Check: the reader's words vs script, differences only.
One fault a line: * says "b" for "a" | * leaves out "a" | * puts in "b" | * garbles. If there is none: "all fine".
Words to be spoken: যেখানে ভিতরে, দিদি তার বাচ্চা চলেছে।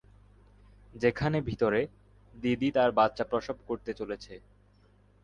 * puts in "প্রসব করতে"